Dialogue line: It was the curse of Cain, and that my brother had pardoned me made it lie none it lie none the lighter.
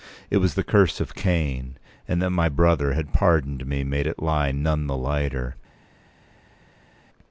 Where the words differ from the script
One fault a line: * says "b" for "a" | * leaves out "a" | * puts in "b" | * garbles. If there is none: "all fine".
* leaves out "it lie none"